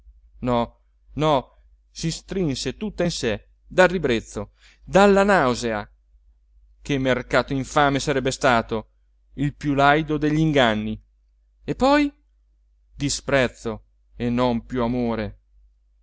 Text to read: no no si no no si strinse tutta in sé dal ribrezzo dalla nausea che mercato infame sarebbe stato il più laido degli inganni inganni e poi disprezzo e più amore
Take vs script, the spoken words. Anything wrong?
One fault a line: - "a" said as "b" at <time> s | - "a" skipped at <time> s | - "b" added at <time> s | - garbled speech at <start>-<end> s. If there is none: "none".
- "no no si" skipped at 2.1 s
- "inganni" skipped at 11.0 s
- "non" added at 14.3 s